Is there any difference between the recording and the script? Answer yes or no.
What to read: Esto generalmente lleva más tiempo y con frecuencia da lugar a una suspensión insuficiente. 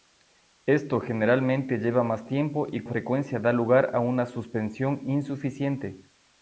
yes